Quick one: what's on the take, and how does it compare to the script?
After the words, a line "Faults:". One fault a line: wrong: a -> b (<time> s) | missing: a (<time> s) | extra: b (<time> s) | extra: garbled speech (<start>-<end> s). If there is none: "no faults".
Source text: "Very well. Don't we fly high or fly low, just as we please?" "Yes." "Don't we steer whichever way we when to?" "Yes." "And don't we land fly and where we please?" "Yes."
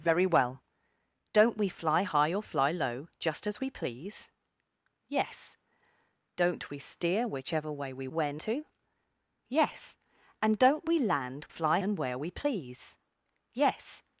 "Very well. Don't we fly high or fly low, just as we please?" "Yes." "Don't we steer whichever way we when to?" "Yes." "And don't we land fly and where we please?" "Yes."
Faults:
no faults